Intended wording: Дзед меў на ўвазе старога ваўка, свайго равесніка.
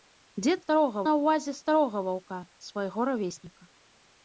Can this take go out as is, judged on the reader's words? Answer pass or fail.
fail